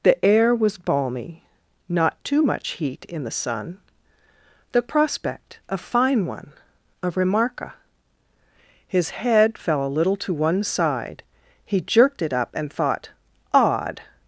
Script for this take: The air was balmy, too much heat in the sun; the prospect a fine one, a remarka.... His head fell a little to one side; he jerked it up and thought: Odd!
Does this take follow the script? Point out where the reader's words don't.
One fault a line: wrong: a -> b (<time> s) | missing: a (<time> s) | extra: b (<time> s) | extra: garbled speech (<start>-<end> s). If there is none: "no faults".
extra: not (1.9 s)